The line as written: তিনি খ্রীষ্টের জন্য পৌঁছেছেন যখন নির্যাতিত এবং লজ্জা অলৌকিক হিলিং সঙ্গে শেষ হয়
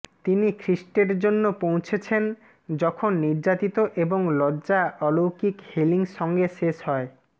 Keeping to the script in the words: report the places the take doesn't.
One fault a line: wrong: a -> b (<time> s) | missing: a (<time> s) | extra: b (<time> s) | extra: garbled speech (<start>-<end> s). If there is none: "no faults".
no faults